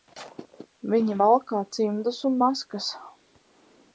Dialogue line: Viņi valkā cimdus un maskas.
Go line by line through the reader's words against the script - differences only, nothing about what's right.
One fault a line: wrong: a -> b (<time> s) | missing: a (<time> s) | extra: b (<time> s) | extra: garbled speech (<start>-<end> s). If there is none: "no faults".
no faults